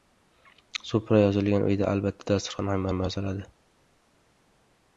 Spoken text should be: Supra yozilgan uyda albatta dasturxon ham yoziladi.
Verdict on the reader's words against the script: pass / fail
fail